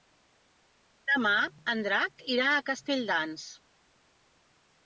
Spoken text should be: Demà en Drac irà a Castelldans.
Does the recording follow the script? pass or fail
pass